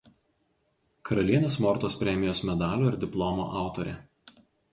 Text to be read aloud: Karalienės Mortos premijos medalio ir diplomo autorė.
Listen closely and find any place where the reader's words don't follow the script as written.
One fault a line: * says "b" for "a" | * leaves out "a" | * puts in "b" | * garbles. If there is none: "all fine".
all fine